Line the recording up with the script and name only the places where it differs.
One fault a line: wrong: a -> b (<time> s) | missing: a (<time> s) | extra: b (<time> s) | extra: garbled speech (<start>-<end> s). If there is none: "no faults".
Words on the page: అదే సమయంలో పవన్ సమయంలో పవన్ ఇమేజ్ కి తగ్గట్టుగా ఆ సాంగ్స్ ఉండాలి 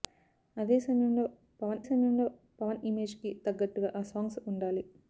no faults